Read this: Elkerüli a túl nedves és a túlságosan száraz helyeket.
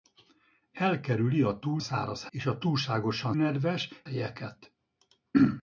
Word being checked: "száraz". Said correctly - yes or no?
no